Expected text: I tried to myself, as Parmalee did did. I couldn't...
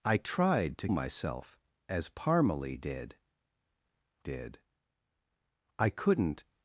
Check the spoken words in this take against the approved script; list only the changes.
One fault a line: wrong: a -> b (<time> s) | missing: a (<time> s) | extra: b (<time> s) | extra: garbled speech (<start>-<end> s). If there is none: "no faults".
no faults